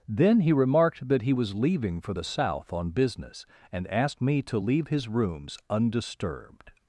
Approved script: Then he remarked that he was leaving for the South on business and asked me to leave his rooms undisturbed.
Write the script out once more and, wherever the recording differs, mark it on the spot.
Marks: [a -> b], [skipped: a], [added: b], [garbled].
Then he remarked that he was leaving for the South on business and asked me to leave his rooms undisturbed.